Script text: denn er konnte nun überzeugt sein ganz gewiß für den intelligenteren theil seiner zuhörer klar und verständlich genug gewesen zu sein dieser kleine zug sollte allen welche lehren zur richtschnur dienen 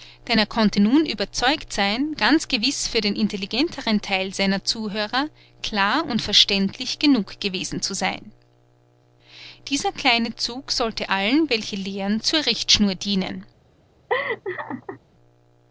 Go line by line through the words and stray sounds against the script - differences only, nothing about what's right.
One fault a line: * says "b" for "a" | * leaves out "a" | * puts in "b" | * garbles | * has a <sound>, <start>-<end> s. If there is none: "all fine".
* has a laugh, 14.1-15.0 s